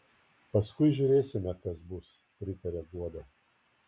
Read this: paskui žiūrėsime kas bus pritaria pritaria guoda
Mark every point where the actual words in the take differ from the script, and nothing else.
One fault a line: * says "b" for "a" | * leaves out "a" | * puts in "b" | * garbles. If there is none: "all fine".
* leaves out "pritaria"